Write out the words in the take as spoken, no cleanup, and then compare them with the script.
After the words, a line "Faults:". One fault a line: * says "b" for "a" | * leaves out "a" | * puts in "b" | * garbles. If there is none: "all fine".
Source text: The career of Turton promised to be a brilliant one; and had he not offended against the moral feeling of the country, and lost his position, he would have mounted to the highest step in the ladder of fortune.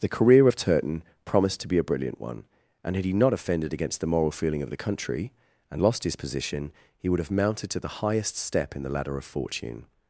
The career of Turton promised to be a brilliant one; and had he not offended against the moral feeling of the country, and lost his position, he would have mounted to the highest step in the ladder of fortune.
Faults:
all fine